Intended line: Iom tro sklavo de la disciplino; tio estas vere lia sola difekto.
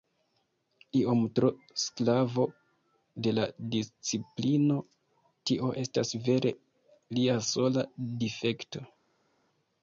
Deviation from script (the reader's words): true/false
false